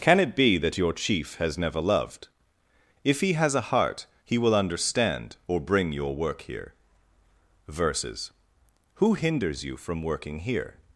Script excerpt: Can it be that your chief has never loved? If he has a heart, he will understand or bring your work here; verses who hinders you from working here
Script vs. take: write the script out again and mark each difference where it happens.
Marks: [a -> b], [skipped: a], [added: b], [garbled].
Can it be that your chief has never loved? If he has a heart, he will understand or bring your work here; verses who hinders you from working here